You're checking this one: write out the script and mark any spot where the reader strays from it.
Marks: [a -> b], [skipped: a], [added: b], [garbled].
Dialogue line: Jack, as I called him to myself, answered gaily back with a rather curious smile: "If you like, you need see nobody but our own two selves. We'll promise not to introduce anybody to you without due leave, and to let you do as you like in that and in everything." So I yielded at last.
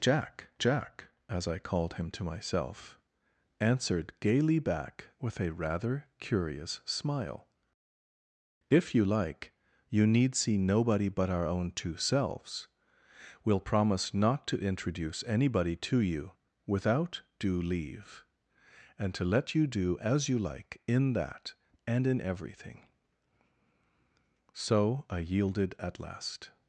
Jack, [added: jack] as I called him to myself, answered gaily back with a rather curious smile: "If you like, you need see nobody but our own two selves. We'll promise not to introduce anybody to you without due leave, and to let you do as you like in that and in everything." So I yielded at last.